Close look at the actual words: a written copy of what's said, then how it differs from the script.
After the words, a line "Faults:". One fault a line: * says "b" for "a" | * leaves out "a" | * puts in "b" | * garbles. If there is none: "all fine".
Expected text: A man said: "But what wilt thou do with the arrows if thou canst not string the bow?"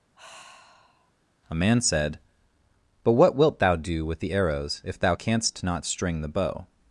A man said: "But what wilt thou do with the arrows if thou canst not string the bow?"
Faults:
all fine